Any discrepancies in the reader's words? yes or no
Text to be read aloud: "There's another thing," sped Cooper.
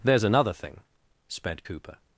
no